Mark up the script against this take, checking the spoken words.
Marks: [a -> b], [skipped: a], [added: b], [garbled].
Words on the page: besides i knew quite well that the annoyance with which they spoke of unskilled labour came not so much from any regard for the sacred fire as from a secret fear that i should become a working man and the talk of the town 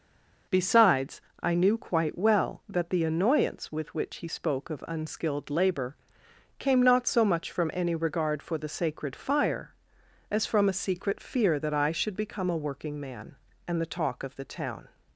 besides i knew quite well that the annoyance with which [they -> he] spoke of unskilled labour came not so much from any regard for the sacred fire as from a secret fear that i should become a working man and the talk of the town